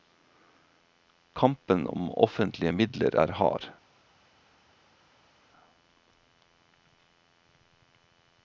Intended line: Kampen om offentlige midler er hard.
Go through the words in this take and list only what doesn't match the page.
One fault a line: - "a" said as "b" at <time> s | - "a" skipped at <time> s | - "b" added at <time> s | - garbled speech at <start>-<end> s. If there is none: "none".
none